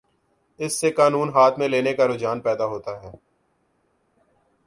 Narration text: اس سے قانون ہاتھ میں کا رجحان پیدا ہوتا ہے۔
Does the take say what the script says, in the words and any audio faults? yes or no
no